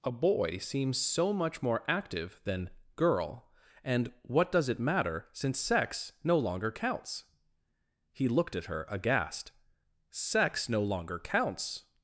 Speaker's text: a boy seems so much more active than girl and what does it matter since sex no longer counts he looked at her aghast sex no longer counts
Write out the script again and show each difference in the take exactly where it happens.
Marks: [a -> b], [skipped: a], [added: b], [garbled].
a boy seems so much more active than girl and what does it matter since sex no longer counts he looked at her aghast sex no longer counts